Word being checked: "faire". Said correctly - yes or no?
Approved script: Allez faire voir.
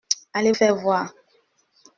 yes